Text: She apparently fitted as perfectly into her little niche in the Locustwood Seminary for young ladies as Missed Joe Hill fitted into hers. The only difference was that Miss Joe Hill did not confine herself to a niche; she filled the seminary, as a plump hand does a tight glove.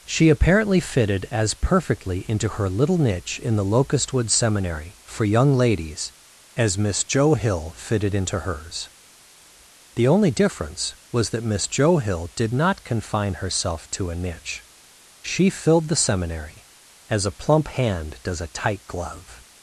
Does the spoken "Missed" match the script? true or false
false